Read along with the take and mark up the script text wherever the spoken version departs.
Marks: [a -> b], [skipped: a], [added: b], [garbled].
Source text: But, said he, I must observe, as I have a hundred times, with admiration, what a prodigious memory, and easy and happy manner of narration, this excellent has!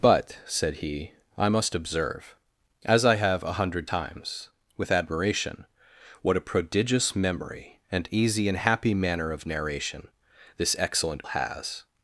But, said he, I must observe, as I have a hundred times, with admiration, what a prodigious memory, and easy and happy manner of narration, this excellent has!